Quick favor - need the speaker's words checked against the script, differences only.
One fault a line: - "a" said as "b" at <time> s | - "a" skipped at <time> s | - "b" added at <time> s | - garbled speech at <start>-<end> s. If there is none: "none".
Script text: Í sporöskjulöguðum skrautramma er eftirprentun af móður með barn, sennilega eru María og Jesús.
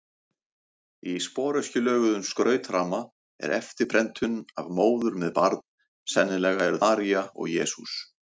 none